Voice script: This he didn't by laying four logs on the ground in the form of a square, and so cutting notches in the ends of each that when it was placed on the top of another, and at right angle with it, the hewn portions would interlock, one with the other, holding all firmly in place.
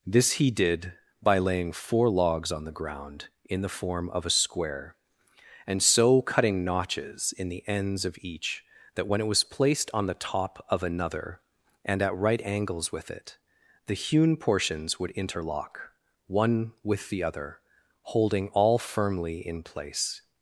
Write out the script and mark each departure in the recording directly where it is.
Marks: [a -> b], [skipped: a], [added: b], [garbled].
This he [didn't -> did] by laying four logs on the ground in the form of a square, and so cutting notches in the ends of each that when it was placed on the top of another, and at right [angle -> angles] with it, the hewn portions would interlock, one with the other, holding all firmly in place.